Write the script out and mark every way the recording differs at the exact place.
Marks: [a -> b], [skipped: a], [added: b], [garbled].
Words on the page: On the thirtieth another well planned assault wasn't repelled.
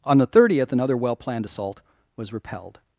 On the thirtieth another well planned assault [wasn't -> was] repelled.